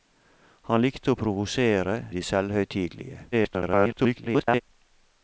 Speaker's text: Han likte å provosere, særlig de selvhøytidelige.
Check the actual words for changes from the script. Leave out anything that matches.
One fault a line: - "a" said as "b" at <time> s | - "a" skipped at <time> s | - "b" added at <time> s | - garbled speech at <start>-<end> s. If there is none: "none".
- "særlig" skipped at 1.9 s
- garbled speech at 3.3-4.6 s